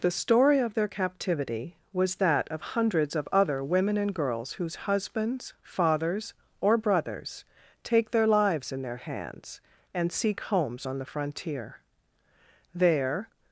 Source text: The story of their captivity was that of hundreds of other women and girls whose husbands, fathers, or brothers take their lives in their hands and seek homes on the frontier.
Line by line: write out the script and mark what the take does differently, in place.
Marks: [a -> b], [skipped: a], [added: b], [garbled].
The story of their captivity was that of hundreds of other women and girls whose husbands, fathers, or brothers take their lives in their hands and seek homes on the frontier. [added: There]